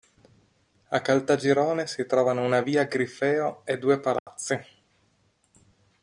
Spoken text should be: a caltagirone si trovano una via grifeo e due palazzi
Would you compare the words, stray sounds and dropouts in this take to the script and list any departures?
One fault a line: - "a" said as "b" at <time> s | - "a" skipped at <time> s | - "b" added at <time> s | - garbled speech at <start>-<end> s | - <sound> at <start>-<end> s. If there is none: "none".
- dropout at 4.2-4.3 s